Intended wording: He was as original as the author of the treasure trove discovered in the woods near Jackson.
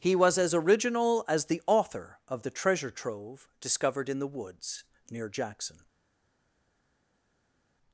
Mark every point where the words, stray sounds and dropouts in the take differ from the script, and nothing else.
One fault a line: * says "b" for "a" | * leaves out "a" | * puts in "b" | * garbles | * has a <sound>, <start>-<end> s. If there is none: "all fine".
all fine